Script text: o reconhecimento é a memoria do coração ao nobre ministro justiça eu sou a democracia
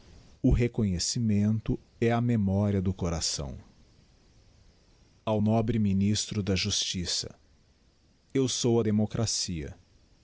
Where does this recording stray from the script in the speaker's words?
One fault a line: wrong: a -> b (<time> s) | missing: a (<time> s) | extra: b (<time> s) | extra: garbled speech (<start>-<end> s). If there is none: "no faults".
extra: da (6.4 s)